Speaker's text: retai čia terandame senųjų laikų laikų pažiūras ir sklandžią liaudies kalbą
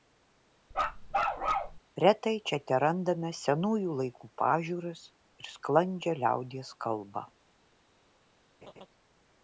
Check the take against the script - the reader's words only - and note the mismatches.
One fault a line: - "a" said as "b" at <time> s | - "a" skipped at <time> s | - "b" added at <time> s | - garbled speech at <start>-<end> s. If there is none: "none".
- "laikų" skipped at 4.3 s